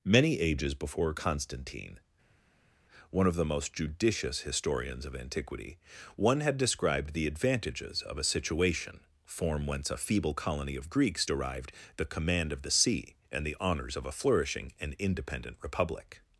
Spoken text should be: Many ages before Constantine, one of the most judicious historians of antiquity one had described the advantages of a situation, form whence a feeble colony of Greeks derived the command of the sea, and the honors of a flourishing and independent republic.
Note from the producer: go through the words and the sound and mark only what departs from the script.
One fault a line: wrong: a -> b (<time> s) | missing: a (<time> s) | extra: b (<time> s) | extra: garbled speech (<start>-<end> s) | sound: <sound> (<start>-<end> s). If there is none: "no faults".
no faults